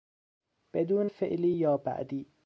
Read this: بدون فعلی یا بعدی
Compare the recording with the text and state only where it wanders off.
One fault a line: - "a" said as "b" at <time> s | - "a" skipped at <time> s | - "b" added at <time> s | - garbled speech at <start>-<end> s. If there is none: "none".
none